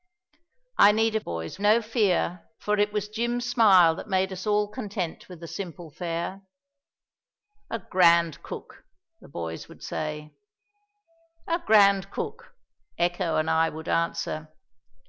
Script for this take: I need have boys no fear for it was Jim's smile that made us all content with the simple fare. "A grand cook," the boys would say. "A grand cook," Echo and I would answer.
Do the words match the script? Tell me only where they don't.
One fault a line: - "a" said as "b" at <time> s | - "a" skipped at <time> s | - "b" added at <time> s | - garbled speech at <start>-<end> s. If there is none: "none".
none